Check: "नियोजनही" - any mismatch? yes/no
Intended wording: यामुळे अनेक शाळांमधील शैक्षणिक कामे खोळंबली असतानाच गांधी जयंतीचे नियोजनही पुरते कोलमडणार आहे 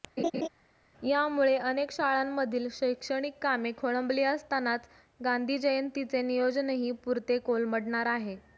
no